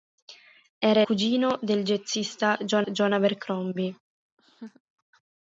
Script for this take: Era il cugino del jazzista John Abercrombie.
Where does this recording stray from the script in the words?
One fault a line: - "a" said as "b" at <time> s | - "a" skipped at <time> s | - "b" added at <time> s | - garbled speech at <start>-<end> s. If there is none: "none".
- "il" skipped at 1.0 s
- "John" added at 2.9 s